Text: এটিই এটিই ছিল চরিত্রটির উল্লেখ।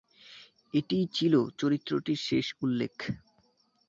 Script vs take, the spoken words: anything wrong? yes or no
yes